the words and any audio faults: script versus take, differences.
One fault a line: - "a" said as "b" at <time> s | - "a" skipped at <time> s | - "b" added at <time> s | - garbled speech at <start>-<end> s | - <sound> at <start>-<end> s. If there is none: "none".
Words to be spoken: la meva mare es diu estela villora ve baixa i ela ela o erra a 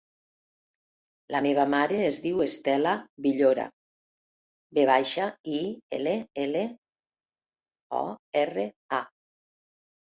none